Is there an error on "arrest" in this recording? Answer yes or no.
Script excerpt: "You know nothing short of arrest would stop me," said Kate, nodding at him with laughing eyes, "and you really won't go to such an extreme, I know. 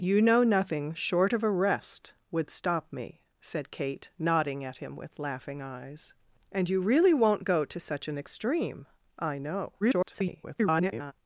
no